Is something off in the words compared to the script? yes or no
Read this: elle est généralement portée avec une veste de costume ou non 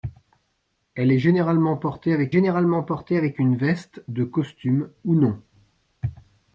yes